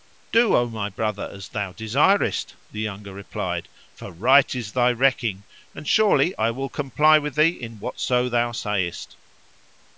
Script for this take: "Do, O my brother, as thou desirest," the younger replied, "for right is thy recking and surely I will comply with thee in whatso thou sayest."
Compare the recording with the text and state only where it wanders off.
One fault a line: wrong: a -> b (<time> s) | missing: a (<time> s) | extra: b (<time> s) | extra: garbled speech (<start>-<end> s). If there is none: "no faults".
no faults